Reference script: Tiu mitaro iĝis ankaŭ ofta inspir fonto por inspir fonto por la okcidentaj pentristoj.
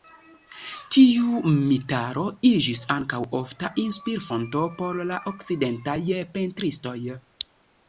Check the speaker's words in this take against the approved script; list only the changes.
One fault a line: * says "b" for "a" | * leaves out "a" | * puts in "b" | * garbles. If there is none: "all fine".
* leaves out "inspir fonto por"